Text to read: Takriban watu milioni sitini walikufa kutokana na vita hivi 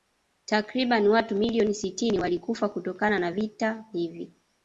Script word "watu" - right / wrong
right